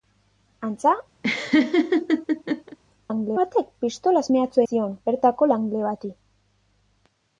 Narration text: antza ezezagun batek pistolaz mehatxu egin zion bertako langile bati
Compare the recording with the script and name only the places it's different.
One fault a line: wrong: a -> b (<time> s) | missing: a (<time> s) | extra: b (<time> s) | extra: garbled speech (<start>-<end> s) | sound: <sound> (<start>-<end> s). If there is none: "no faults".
sound: laugh (1.2-2.8 s)
wrong: ezezagun -> langile (3.1 s)
missing: egin (4.6 s)